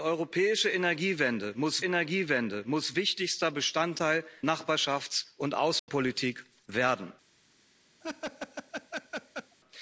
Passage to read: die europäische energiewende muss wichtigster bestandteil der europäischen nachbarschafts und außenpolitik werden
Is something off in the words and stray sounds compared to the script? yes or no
yes